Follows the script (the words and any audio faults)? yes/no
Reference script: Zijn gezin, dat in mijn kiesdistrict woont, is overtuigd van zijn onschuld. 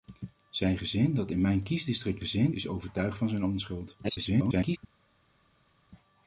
no